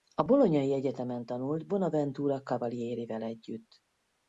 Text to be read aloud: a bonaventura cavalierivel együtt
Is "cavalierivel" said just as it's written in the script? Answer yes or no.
yes